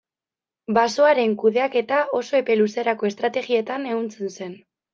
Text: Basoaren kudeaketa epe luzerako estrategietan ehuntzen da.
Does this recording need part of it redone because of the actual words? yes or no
yes